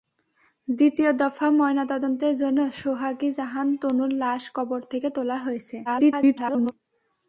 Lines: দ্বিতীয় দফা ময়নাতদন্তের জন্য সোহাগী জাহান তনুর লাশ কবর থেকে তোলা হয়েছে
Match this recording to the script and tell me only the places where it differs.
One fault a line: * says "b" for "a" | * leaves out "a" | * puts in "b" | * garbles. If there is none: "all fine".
* garbles